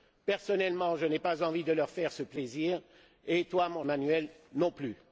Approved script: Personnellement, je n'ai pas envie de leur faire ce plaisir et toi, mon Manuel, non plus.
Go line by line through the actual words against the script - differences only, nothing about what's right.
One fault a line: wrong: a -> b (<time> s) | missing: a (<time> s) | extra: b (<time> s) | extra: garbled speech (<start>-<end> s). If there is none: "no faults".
no faults